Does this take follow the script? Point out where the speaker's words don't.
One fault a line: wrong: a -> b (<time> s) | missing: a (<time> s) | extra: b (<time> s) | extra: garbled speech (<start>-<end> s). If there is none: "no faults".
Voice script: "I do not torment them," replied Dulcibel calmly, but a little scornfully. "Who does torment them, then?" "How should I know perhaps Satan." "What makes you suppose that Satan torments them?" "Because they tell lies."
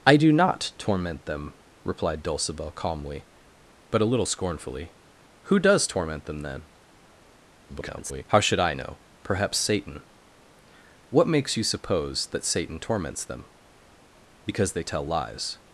extra: garbled speech (7.7-8.2 s)